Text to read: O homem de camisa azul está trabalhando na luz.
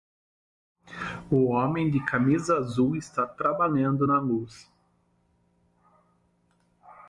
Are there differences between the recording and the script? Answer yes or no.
no